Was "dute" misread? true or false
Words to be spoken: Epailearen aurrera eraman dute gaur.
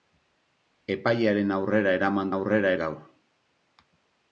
true